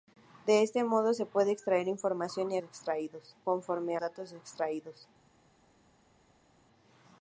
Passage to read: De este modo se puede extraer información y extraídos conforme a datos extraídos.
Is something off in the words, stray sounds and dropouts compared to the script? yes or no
no